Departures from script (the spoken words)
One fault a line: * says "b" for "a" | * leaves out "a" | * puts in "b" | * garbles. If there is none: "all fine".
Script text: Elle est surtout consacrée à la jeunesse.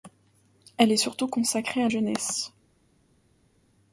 * leaves out "la"